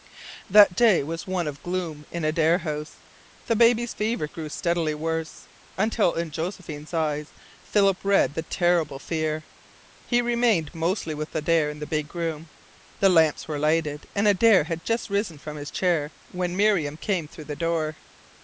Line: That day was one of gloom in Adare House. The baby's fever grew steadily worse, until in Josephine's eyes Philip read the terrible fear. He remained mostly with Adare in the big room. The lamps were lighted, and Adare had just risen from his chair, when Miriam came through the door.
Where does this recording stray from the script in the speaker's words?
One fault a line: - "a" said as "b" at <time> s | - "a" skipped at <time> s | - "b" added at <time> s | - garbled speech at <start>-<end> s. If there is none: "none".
none